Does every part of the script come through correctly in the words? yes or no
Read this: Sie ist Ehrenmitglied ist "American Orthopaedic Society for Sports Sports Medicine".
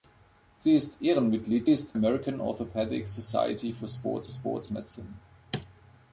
yes